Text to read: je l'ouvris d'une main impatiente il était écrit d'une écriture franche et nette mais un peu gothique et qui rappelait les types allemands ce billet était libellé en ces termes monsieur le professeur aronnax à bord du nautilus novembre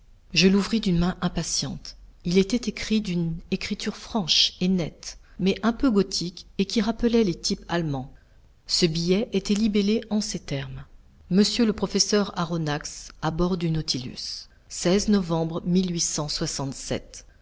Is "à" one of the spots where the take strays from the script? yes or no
no